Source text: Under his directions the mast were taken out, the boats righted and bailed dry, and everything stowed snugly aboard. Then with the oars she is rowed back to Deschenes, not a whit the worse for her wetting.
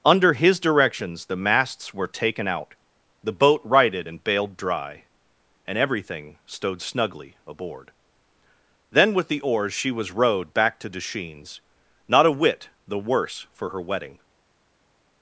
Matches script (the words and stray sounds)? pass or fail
fail